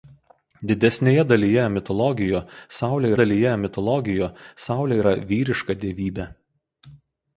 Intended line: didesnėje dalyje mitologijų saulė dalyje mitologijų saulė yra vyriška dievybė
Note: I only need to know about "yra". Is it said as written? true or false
true